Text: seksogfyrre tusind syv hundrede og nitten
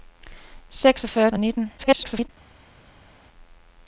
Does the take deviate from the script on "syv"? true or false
true